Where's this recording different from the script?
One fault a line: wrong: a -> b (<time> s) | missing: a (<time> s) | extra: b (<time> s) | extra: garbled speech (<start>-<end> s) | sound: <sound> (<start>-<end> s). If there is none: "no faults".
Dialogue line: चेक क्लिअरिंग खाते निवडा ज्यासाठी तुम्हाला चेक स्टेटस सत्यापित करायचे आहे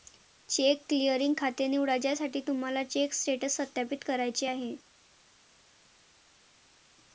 no faults